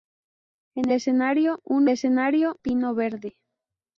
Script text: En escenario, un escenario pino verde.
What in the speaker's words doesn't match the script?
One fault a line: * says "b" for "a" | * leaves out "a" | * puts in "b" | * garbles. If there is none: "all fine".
all fine